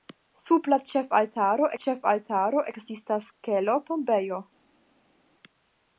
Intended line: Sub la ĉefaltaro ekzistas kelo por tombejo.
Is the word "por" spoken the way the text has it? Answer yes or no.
no